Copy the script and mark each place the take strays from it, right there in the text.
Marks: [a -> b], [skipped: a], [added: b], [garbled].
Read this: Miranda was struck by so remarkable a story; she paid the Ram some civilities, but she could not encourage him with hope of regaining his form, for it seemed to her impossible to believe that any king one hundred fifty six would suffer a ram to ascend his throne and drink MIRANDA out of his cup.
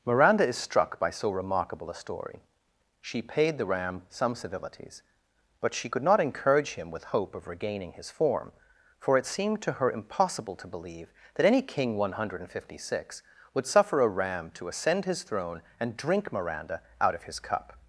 Miranda [was -> is] struck by so remarkable a story; she paid the Ram some civilities, but she could not encourage him with hope of regaining his form, for it seemed to her impossible to believe that any king one hundred fifty six would suffer a ram to ascend his throne and drink MIRANDA out of his cup.